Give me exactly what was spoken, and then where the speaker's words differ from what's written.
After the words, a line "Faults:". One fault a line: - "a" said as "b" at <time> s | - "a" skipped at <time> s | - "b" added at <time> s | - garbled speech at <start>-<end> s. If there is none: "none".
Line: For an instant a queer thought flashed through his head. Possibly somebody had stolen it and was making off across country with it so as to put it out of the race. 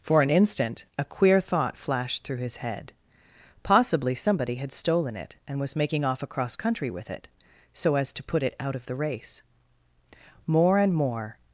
For an instant a queer thought flashed through his head. Possibly somebody had stolen it and was making off across country with it so as to put it out of the race. More and more
Faults:
- "More and more" added at 10.5 s